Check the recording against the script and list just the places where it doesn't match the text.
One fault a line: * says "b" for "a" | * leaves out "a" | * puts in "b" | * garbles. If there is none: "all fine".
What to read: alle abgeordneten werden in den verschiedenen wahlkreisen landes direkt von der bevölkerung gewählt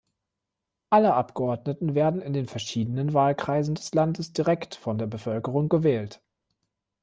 * puts in "des"